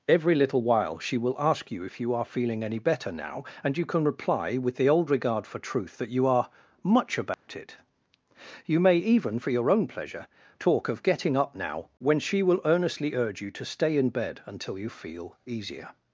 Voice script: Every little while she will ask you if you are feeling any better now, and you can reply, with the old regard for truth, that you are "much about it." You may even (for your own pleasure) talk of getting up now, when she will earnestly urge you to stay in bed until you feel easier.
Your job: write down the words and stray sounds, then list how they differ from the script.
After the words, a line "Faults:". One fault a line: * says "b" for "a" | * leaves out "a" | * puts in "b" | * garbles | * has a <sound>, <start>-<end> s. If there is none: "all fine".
Every little while she will ask you if you are feeling any better now, and you can reply, with the old regard for truth, that you are "much about it." You may even (for your own pleasure) talk of getting up now, when she will earnestly urge you to stay in bed until you feel easier.
Faults:
* has a dropout, 7.3-7.5 s